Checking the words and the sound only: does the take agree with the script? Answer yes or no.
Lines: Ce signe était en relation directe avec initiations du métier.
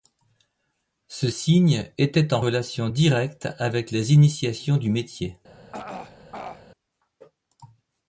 no